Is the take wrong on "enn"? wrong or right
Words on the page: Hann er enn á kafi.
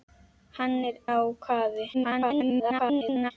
wrong